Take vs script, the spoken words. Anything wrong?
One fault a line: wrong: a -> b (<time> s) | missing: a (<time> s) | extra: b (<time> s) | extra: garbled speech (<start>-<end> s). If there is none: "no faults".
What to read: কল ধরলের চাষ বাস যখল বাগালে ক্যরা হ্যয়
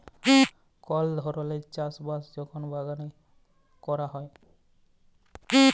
no faults